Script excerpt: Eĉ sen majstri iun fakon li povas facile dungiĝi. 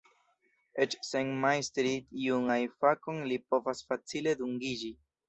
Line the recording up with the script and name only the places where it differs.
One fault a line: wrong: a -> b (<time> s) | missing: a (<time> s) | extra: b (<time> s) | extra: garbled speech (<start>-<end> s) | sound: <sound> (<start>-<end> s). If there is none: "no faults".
extra: ajn (2.5 s)